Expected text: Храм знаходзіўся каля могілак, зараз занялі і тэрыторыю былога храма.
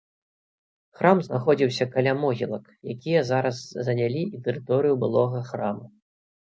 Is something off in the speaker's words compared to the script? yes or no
yes